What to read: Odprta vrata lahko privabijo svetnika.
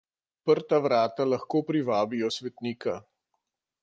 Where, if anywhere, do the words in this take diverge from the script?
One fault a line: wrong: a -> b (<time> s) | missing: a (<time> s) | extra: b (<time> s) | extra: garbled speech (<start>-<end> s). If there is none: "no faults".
no faults